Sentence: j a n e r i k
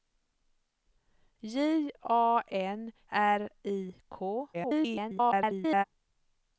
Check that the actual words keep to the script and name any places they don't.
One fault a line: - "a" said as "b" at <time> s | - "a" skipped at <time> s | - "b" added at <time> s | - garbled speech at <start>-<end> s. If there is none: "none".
- "e" skipped at 2.9 s
- garbled speech at 4.5-5.8 s